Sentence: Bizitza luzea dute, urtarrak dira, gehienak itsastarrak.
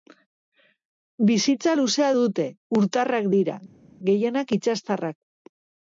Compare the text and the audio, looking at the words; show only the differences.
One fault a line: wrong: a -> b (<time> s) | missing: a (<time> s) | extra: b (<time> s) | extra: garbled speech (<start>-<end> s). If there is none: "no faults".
no faults